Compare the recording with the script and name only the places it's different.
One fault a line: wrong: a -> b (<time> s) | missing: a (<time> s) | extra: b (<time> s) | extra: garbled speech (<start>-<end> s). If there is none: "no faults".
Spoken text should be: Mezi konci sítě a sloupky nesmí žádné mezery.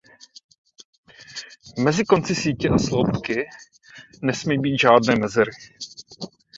extra: být (4.6 s)